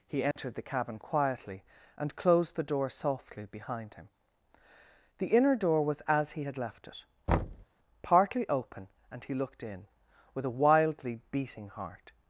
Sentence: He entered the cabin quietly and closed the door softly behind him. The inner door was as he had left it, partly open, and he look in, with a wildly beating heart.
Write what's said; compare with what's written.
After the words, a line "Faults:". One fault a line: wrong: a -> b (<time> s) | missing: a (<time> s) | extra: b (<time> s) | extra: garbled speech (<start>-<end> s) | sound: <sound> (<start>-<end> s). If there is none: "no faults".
He entered the cabin quietly and closed the door softly behind him. The inner door was as he had left it, partly open, and he looked in, with a wildly beating heart.
Faults:
sound: dropout (0.3-0.4 s)
sound: thud (7.3-7.7 s)
wrong: look -> looked (9.3 s)